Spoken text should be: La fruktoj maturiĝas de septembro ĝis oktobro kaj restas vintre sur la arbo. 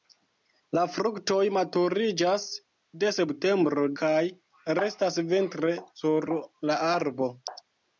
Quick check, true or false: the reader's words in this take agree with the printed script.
false